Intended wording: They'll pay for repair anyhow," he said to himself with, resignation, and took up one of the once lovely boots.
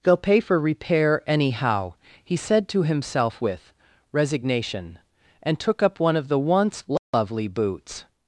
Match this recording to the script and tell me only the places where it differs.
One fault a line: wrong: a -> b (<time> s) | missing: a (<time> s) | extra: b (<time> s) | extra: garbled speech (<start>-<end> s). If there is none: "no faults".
no faults